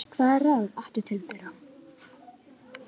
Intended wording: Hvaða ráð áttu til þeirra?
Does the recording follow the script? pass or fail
pass